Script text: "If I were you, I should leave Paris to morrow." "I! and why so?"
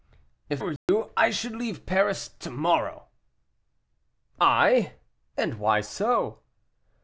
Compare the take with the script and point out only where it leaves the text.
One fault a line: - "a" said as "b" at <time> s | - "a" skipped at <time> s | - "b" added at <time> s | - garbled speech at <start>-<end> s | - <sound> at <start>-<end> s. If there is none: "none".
- "I" skipped at 0.6 s
- dropout at 0.8-0.9 s